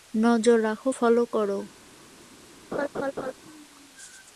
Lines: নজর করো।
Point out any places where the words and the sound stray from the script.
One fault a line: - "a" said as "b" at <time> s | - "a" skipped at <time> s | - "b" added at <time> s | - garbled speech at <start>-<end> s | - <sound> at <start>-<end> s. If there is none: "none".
- "রাখো ফলো" added at 0.6 s
- laugh at 2.7-3.3 s